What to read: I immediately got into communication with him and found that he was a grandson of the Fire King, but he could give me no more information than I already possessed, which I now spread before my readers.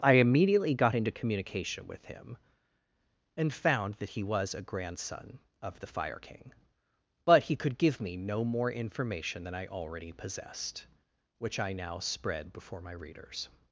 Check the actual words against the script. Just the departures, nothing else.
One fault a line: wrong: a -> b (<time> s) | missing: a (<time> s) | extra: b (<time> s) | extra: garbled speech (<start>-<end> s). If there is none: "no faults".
no faults